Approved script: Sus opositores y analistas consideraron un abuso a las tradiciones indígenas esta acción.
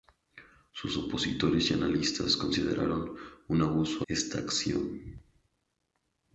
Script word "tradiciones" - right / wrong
wrong